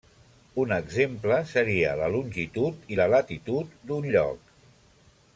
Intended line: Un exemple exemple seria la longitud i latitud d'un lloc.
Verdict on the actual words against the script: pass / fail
fail